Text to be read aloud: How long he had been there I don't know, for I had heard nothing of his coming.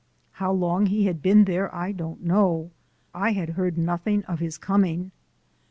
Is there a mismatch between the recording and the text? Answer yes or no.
yes